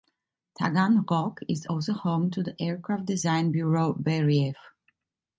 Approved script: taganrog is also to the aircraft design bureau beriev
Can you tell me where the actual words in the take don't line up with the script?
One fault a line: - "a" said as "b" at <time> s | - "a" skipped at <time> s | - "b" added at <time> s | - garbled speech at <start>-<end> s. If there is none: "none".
- "home" added at 1.9 s